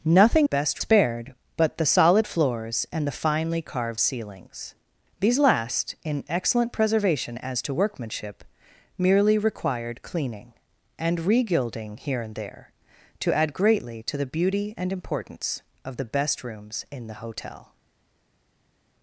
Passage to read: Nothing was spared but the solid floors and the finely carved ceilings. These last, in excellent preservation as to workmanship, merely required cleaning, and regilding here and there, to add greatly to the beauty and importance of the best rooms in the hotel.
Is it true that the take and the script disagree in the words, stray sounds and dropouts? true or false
true